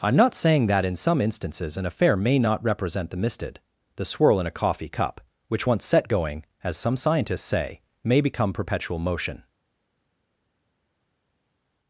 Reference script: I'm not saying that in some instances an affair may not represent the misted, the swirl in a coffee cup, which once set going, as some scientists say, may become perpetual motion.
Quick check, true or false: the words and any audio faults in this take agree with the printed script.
true